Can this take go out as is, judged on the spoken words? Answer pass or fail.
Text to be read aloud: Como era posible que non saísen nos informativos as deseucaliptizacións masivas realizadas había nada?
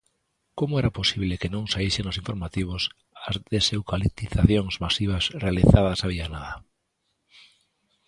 pass